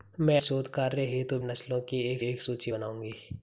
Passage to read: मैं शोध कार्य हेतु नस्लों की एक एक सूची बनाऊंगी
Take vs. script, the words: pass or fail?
pass